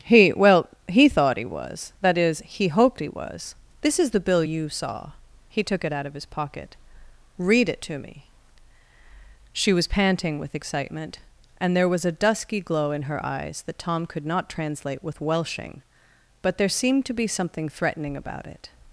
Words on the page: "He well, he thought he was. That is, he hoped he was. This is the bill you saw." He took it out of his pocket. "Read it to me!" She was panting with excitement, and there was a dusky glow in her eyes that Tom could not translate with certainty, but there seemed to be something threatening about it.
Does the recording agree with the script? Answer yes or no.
no